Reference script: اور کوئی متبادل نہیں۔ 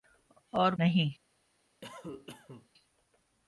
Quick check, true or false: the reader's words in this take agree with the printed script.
false